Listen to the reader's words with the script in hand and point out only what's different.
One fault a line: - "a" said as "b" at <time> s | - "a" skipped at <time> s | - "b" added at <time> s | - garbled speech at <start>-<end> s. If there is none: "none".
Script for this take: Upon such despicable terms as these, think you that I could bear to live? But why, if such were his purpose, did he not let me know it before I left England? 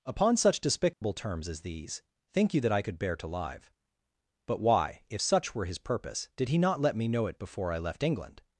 none